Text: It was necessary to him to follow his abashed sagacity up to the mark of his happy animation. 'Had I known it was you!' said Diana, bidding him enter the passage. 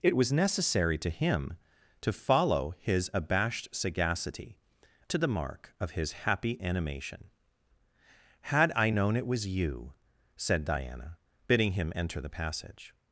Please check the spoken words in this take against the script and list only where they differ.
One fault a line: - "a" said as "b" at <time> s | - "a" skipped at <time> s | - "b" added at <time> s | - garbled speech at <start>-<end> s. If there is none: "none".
- "up" skipped at 4.6 s